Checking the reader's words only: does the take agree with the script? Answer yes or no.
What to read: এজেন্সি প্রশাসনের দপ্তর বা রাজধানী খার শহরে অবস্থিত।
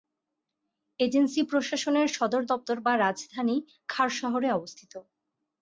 no